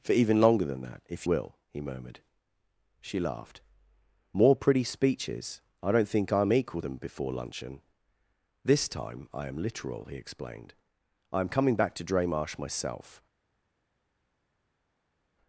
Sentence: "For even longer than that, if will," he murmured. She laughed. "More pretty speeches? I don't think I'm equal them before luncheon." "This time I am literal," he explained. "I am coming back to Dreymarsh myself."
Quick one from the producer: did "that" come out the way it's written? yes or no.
yes